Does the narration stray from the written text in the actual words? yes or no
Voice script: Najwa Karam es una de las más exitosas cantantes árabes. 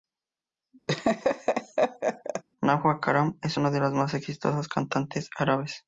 no